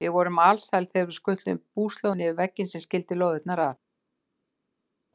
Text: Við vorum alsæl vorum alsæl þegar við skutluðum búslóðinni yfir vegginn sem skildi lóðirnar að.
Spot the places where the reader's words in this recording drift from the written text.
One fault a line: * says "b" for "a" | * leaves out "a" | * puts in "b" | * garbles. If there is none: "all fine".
* leaves out "vorum alsæl"